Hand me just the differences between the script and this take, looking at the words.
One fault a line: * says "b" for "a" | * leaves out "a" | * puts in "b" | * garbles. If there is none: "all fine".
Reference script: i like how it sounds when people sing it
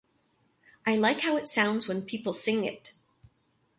all fine